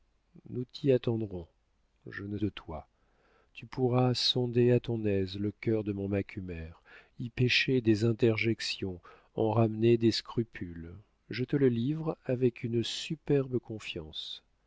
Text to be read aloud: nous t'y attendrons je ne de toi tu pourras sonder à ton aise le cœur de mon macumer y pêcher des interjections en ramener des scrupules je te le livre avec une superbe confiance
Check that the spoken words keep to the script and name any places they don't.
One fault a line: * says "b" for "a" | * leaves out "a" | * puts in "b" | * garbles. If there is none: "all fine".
all fine